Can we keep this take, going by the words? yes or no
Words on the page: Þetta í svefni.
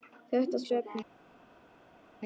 yes